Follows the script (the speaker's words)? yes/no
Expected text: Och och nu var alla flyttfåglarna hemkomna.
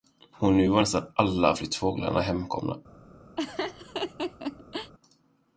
no